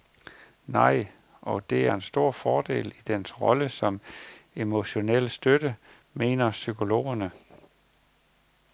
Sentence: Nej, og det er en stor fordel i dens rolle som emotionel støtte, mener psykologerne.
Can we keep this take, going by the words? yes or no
yes